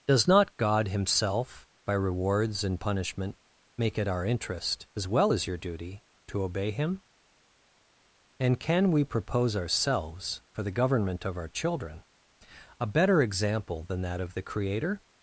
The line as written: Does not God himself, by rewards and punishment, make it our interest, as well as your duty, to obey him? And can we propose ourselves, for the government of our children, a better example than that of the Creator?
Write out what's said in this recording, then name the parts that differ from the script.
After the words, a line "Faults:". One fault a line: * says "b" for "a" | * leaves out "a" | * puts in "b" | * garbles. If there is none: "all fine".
Does not God himself, by rewards and punishment, make it our interest, as well as your duty, to obey him? And can we propose ourselves, for the government of our children, a better example than that of the Creator?
Faults:
all fine